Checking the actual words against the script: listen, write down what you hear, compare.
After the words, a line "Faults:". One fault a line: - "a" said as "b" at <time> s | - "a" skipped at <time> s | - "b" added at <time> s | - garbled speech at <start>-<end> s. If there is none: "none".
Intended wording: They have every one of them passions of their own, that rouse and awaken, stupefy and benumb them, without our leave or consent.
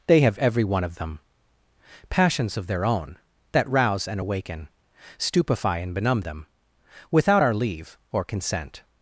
They have every one of them passions of their own, that rouse and awaken, stupefy and benumb them, without our leave or consent.
Faults:
none